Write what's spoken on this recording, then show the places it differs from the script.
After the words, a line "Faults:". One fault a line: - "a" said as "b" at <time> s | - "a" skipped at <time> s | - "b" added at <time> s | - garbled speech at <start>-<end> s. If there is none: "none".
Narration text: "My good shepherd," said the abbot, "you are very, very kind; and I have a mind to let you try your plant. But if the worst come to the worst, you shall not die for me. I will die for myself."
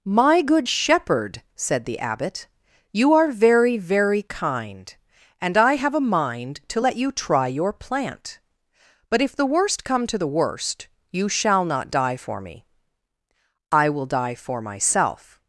"My good shepherd," said the abbot, "you are very, very kind; and I have a mind to let you try your plant. But if the worst come to the worst, you shall not die for me. I will die for myself."
Faults:
none